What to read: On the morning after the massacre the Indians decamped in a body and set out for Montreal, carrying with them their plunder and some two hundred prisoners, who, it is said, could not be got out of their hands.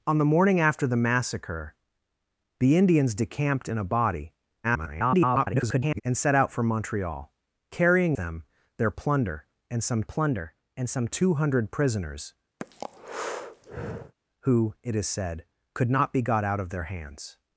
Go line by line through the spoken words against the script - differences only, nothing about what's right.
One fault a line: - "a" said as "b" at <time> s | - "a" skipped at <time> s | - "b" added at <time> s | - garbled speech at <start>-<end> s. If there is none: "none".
- garbled speech at 4.6-6.0 s
- "with" skipped at 8.2 s
- "plunder and some" added at 10.0 s